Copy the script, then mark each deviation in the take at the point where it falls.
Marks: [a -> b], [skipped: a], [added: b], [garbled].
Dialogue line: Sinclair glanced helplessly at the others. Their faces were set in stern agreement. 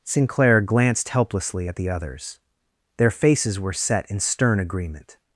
Sinclair glanced helplessly at the others. Their faces were set in stern agreement.